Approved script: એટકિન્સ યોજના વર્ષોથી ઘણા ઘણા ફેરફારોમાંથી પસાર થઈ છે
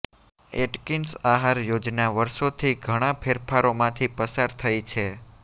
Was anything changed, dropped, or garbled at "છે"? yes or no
no